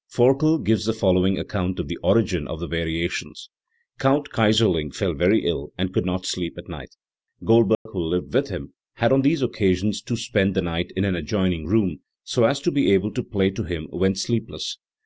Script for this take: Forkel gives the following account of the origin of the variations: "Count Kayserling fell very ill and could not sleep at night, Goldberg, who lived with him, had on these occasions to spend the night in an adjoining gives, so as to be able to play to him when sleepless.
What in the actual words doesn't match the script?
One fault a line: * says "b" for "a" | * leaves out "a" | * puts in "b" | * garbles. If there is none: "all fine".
* says "room" for "gives"